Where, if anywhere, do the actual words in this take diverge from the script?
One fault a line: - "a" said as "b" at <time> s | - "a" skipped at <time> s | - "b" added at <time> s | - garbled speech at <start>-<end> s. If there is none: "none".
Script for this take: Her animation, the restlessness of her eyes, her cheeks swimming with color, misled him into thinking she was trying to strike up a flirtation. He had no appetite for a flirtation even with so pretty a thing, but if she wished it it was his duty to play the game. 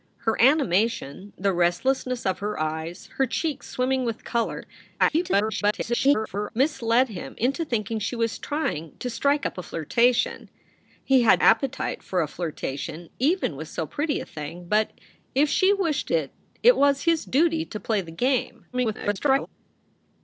- garbled speech at 5.0-6.5 s
- "no" skipped at 11.4 s
- garbled speech at 18.7-19.5 s